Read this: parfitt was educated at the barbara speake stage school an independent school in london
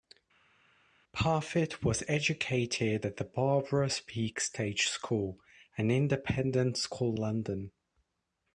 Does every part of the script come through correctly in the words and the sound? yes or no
no